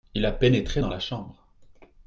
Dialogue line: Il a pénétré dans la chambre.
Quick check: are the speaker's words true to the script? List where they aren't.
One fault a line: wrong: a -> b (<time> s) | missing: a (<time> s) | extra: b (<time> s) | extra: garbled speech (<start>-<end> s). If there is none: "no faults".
no faults